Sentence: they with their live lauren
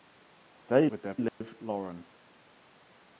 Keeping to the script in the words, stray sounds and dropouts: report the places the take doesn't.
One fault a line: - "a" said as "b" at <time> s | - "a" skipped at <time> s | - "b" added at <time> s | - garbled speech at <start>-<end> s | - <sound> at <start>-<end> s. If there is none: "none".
- dropout at 1.3-1.4 s